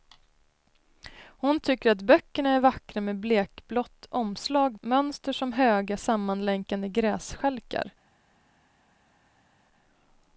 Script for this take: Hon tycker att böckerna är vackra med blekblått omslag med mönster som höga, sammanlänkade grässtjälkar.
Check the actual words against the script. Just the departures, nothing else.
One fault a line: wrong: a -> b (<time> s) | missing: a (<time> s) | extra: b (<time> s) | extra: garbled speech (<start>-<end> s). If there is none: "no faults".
missing: med (4.8 s)